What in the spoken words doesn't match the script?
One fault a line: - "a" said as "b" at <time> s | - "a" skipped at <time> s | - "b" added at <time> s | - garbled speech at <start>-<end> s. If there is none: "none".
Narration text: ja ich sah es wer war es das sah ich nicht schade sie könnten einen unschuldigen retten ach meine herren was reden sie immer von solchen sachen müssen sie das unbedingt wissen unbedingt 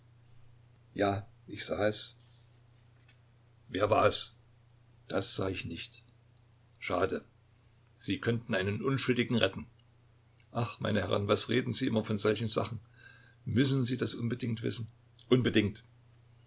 none